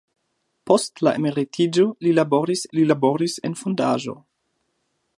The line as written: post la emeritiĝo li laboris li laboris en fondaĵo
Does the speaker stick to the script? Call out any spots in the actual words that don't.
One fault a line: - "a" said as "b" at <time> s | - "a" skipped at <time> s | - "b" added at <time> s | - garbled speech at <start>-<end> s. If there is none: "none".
none